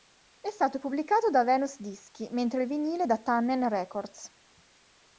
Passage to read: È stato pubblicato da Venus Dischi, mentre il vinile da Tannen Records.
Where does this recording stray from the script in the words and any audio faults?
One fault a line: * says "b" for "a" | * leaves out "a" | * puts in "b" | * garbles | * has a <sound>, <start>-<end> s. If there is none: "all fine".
all fine